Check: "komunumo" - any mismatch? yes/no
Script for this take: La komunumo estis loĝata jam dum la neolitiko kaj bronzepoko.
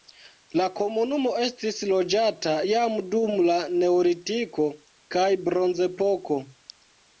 no